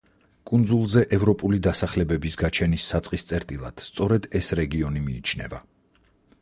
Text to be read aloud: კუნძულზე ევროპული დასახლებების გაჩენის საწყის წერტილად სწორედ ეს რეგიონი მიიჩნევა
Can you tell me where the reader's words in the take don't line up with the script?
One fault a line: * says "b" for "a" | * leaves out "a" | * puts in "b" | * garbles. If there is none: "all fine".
all fine